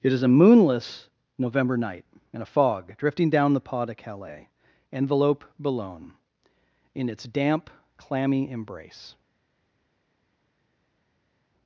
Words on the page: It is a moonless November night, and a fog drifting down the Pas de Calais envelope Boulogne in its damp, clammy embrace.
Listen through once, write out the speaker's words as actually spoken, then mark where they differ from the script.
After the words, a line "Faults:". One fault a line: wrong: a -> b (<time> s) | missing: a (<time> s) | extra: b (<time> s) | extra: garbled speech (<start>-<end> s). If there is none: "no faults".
It is a moonless November night, and a fog drifting down the Pas de Calais envelope Boulogne in its damp, clammy embrace.
Faults:
no faults